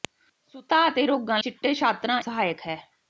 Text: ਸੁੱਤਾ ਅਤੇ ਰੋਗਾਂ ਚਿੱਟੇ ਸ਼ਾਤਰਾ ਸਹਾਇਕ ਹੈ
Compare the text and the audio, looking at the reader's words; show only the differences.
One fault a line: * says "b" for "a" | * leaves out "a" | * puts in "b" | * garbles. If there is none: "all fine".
all fine